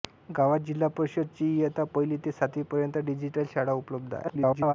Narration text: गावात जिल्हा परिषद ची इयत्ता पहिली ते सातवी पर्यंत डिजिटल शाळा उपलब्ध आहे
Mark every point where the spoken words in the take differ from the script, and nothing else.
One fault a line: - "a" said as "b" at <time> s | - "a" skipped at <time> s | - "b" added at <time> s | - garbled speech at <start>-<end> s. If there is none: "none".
- garbled speech at 4.2-4.7 s